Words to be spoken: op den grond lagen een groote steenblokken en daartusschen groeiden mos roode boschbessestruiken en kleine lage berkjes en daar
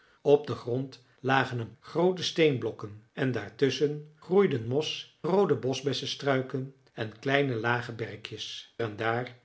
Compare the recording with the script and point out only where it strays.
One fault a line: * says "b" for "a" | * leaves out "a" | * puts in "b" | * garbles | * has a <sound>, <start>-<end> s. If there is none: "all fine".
all fine